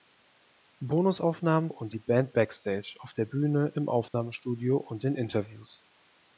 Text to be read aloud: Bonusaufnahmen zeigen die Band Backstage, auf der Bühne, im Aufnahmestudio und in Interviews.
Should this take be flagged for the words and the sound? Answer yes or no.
yes